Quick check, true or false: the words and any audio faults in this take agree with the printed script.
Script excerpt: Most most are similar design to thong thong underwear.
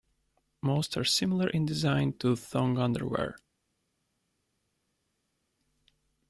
false